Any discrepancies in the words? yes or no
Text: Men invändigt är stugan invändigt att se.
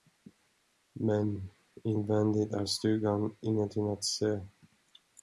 yes